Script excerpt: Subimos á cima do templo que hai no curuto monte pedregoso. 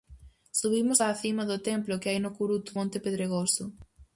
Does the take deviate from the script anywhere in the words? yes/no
no